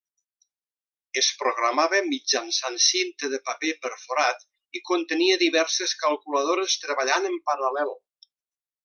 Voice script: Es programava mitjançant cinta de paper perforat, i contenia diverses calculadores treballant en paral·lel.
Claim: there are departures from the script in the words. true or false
false